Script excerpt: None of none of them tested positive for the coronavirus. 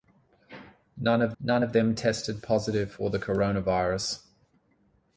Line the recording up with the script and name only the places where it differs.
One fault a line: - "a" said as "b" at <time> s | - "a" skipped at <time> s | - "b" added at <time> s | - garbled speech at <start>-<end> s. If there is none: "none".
none